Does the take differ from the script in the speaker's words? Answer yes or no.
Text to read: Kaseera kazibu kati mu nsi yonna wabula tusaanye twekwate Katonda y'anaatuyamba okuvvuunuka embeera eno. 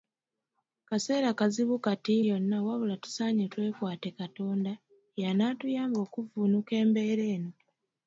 yes